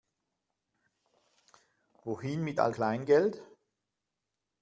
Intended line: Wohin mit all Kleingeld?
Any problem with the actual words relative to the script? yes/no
no